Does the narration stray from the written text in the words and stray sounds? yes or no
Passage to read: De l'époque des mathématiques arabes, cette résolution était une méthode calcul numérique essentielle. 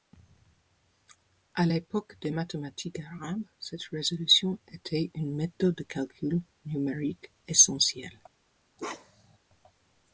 yes